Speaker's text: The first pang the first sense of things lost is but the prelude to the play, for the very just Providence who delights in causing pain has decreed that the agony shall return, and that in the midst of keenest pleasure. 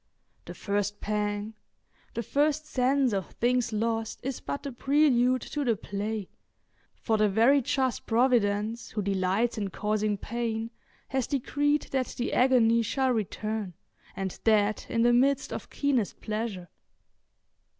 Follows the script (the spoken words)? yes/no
yes